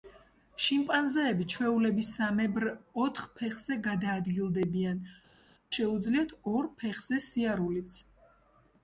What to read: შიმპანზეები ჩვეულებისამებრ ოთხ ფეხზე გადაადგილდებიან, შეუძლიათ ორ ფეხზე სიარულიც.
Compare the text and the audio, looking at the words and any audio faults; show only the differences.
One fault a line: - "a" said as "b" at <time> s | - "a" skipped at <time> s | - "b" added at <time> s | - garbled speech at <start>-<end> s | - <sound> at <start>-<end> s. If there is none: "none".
none